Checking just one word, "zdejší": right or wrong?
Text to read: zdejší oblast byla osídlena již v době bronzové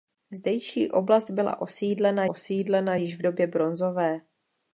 right